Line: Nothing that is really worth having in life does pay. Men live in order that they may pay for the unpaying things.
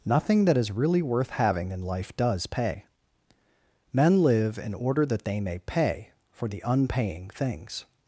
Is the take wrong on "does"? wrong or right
right